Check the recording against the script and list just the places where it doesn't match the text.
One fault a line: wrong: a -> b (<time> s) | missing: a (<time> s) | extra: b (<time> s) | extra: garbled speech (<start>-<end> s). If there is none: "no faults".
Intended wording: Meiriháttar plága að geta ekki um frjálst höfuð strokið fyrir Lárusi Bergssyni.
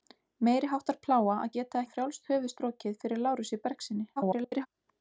missing: ekki (1.8 s)
extra: garbled speech (4.2-4.7 s)